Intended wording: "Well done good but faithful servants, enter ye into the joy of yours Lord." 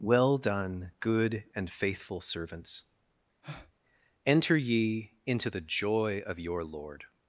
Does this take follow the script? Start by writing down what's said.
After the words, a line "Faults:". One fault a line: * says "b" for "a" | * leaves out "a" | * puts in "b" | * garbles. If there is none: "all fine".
"Well done good and faithful servants, enter ye into the joy of your Lord."
Faults:
* says "and" for "but"
* says "your" for "yours"